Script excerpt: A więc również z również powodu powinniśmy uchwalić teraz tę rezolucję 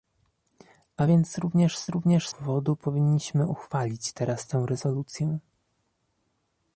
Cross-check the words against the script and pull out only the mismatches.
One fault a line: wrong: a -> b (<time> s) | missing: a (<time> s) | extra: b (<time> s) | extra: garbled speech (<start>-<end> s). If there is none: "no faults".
no faults